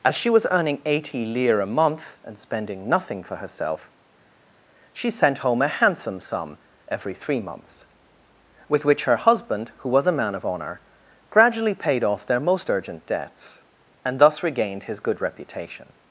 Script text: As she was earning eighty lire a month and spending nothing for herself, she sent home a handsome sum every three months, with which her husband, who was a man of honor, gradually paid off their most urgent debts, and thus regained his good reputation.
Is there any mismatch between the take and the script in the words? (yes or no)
no